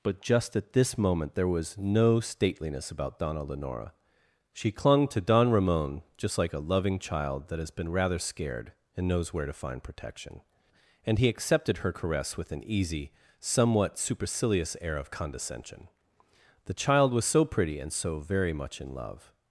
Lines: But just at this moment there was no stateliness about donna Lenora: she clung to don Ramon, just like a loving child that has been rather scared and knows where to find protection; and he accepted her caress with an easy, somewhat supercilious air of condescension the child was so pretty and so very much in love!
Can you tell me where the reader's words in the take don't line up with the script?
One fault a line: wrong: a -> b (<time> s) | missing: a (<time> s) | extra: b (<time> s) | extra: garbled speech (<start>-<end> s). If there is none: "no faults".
no faults